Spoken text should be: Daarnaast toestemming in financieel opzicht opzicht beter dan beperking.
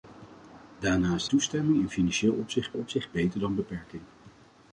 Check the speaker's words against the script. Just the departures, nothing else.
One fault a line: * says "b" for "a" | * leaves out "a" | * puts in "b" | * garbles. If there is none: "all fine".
all fine